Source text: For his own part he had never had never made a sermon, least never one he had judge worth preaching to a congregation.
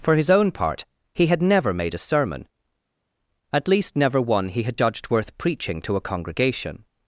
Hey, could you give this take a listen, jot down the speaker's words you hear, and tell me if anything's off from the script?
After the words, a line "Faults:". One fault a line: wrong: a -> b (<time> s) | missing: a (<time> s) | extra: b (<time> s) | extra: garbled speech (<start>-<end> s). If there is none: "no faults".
For his own part he had never made a sermon, at least never one he had judged worth preaching to a congregation.
Faults:
missing: had never (1.7 s)
extra: at (3.5 s)
wrong: judge -> judged (4.8 s)